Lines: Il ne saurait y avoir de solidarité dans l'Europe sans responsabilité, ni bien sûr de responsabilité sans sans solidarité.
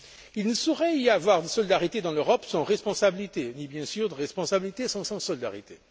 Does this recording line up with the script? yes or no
yes